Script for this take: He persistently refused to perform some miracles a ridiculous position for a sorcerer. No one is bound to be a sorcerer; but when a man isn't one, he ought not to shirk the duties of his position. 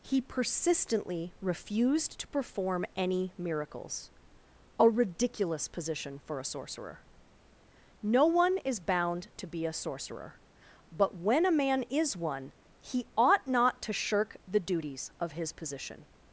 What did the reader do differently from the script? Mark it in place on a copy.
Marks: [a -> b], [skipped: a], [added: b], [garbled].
He persistently refused to perform [some -> any] miracles a ridiculous position for a sorcerer. No one is bound to be a sorcerer; but when a man [isn't -> is] one, he ought not to shirk the duties of his position.